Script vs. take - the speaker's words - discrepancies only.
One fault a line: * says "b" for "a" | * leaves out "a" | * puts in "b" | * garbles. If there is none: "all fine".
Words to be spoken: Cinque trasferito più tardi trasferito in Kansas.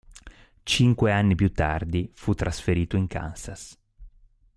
* says "anni" for "trasferito"
* puts in "fu"